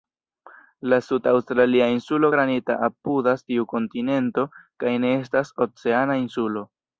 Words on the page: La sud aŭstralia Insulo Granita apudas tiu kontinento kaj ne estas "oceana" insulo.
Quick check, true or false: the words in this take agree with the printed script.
true